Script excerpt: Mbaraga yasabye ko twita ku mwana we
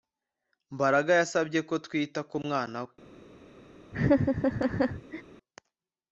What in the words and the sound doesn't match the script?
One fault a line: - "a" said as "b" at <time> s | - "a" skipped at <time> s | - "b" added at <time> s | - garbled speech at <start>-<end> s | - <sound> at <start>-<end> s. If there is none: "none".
- laugh at 3.9-5.2 s